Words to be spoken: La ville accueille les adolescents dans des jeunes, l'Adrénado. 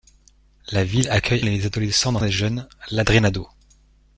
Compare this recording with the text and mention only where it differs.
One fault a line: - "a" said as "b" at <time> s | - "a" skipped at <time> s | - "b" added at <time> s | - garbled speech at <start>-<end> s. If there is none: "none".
none